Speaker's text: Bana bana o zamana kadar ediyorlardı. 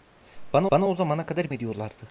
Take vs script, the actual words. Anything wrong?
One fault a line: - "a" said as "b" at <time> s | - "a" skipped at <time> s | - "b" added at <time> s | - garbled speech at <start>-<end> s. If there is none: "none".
none